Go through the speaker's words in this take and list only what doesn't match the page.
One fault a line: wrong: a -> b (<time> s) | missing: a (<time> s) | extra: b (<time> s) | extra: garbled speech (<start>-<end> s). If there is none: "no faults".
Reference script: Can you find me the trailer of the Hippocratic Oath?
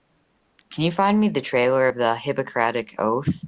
no faults